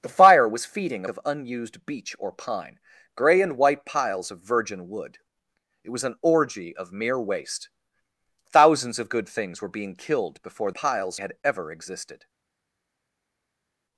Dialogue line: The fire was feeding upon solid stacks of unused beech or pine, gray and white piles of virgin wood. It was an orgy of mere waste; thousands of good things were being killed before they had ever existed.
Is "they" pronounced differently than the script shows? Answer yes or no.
yes